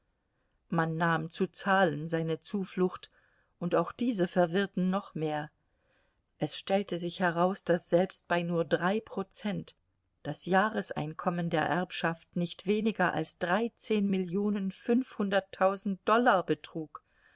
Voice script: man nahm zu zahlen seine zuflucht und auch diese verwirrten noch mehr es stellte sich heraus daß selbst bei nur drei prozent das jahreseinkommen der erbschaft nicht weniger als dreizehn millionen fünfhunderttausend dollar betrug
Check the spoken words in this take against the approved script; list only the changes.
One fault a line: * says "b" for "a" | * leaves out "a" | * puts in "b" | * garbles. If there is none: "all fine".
all fine